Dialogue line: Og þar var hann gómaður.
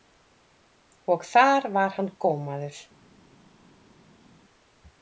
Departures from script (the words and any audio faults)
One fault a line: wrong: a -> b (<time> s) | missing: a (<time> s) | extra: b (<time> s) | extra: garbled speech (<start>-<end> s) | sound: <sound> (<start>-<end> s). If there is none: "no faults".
no faults